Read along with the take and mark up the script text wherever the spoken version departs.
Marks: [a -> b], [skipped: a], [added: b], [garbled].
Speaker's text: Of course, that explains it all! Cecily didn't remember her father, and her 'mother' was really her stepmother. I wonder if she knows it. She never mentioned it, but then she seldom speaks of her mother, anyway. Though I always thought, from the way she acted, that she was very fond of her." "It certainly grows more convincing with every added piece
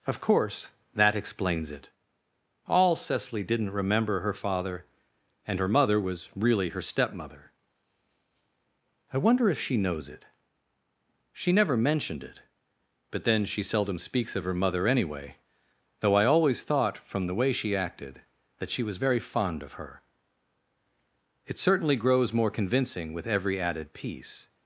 Of course, that explains it all! Cecily didn't remember her father, and her 'mother' was really her stepmother. I wonder if she knows it. She never mentioned it, but then she seldom speaks of her mother, anyway. Though I always thought, from the way she acted, that she was very fond of her." "It certainly grows more convincing with every added piece